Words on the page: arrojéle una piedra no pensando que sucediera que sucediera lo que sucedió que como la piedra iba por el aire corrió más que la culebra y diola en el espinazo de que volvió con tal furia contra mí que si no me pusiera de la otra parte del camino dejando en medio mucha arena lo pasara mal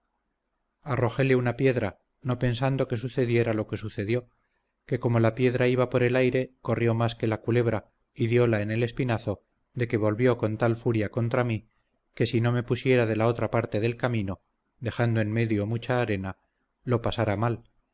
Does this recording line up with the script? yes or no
no